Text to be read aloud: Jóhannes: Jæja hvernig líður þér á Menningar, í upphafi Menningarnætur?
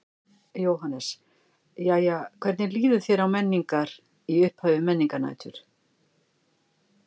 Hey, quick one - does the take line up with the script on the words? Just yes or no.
yes